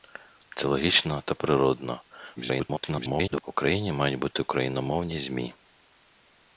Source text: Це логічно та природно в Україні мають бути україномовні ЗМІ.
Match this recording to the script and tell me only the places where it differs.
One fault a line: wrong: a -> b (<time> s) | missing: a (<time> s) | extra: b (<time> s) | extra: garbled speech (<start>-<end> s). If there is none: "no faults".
extra: garbled speech (2.4-3.4 s)